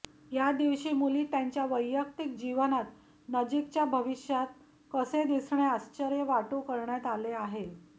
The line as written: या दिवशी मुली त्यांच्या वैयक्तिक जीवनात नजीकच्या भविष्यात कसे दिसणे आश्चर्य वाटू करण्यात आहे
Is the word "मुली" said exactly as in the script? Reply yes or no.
yes